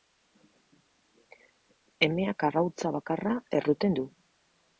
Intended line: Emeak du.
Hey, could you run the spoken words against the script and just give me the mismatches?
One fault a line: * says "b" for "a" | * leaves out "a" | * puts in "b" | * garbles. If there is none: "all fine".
* puts in "arrautza bakarra erruten"